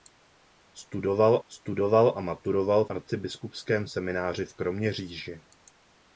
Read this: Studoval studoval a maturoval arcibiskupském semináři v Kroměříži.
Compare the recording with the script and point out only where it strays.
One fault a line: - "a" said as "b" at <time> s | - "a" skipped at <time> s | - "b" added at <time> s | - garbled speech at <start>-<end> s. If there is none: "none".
none